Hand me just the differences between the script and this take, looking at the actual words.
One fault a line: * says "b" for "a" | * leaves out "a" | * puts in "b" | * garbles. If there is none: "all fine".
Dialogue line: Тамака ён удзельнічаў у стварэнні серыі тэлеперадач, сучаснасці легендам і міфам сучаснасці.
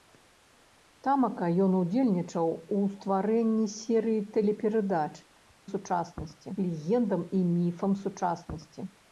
all fine